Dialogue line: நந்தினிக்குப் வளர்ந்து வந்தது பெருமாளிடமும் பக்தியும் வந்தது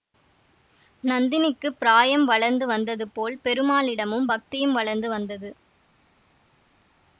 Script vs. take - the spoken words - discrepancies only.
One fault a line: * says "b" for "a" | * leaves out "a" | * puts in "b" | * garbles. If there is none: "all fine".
* puts in "பிராயம்"
* puts in "போல்"
* puts in "வளர்ந்து"